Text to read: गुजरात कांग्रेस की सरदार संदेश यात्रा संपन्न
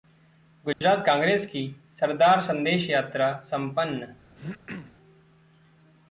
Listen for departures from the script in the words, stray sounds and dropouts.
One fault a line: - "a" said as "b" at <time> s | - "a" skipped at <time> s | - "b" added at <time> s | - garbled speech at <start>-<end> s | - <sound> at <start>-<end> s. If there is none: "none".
- dropout at 0.7-0.8 s
- throat clearing at 4.4-4.9 s